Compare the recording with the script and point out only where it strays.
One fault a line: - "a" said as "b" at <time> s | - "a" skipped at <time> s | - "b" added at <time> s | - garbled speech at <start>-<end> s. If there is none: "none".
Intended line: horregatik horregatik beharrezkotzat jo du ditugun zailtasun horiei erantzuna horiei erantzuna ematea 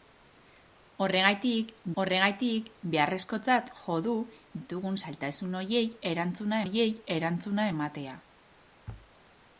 none